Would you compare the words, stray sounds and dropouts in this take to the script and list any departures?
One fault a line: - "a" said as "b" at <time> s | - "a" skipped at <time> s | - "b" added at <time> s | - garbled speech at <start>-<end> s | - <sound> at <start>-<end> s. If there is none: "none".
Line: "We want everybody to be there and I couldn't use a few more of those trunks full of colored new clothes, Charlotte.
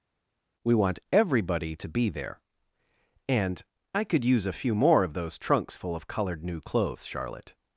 - "couldn't" said as "could" at 4.0 s